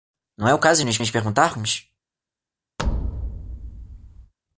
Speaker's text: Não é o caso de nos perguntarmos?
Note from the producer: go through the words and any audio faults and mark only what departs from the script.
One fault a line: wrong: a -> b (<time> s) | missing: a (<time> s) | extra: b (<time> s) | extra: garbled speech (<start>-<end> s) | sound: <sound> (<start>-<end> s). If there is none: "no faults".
extra: nos (1.0 s)
sound: thud (2.8-4.3 s)